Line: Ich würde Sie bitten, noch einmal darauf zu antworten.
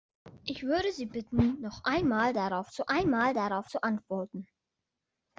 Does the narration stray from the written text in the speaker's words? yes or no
yes